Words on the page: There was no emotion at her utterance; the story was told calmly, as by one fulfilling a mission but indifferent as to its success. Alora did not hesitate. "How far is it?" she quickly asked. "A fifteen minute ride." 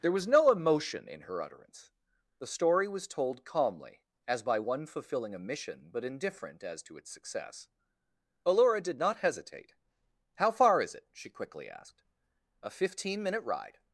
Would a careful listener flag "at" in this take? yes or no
yes